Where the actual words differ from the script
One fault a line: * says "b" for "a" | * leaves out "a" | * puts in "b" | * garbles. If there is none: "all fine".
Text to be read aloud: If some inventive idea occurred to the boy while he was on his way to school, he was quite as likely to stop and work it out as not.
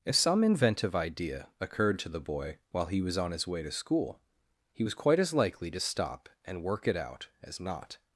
all fine